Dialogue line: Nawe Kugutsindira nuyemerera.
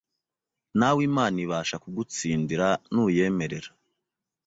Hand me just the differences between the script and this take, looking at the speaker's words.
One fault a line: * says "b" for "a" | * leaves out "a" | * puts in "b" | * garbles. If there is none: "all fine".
* puts in "Imana ibasha"